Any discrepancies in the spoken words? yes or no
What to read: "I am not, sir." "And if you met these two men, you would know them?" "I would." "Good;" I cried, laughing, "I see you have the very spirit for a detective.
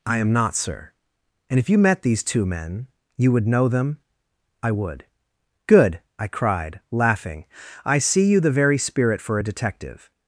yes